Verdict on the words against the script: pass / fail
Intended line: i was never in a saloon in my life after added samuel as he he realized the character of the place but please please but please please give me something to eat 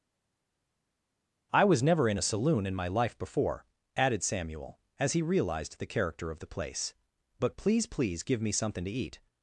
fail